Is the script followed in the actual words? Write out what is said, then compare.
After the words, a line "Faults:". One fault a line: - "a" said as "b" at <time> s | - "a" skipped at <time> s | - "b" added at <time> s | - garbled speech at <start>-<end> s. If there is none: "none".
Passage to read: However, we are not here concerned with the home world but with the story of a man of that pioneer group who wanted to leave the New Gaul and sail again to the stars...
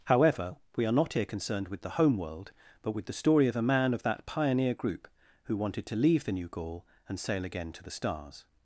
However, we are not here concerned with the home world but with the story of a man of that pioneer group who wanted to leave the New Gaul and sail again to the stars...
Faults:
none